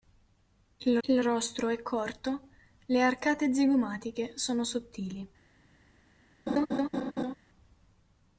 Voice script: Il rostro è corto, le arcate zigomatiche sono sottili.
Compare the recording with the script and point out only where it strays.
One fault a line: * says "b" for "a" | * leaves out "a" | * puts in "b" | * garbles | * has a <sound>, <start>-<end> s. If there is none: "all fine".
* puts in "il"
* has a laugh, 6.5-7.4 s